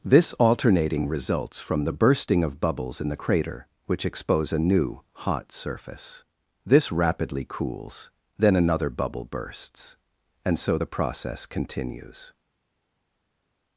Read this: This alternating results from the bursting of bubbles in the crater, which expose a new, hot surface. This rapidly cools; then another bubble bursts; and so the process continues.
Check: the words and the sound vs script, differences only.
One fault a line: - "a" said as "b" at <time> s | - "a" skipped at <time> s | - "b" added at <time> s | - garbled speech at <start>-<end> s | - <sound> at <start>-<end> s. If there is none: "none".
none